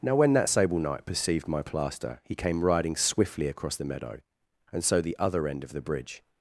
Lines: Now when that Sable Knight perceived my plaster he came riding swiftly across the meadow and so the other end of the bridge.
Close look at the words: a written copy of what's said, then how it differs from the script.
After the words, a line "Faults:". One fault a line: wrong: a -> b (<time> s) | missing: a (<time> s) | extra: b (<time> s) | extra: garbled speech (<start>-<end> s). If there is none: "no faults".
Now when that Sable Knight perceived my plaster he came riding swiftly across the meadow and so the other end of the bridge.
Faults:
no faults